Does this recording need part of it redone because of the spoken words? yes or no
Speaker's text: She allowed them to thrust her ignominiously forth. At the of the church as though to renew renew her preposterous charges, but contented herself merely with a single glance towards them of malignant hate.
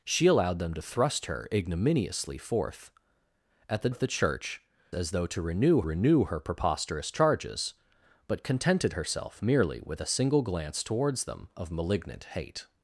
no